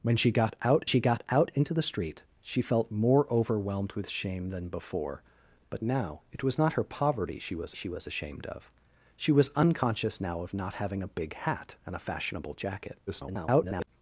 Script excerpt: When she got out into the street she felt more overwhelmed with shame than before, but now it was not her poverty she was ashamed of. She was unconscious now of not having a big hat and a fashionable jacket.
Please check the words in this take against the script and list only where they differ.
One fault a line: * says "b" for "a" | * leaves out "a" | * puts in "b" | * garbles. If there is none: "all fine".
* puts in "she got out"
* puts in "she was"
* garbles